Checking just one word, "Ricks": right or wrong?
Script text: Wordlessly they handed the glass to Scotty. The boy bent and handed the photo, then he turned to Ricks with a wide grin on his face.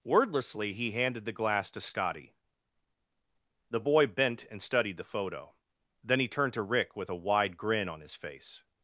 wrong